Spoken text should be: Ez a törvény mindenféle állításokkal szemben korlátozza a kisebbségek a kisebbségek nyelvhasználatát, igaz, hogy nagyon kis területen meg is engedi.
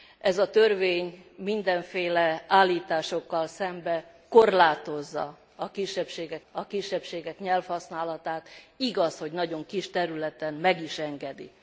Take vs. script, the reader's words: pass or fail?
pass